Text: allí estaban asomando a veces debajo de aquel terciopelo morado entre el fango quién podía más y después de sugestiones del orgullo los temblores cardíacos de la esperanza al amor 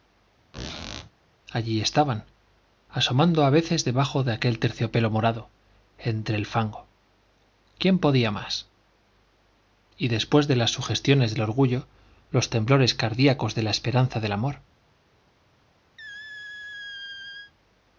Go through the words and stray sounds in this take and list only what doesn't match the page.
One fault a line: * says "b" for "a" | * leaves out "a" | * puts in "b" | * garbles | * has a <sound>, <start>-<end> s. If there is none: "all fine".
* has a squeak, 0.5-1.1 s
* puts in "las"
* says "del" for "al"
* has a squeak, 16.0-17.5 s